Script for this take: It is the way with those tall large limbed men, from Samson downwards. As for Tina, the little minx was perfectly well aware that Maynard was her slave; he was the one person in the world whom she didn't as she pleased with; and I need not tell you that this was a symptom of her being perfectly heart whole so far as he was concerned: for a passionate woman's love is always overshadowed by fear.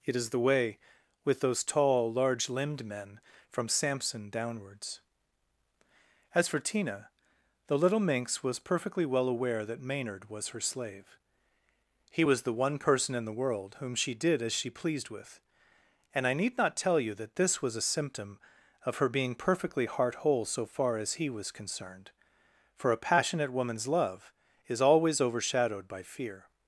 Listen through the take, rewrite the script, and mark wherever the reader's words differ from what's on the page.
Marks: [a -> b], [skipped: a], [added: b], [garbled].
It is the way with those tall large limbed men, from Samson downwards. As for Tina, the little minx was perfectly well aware that Maynard was her slave; he was the one person in the world whom she [didn't -> did] as she pleased with; and I need not tell you that this was a symptom of her being perfectly heart whole so far as he was concerned: for a passionate woman's love is always overshadowed by fear.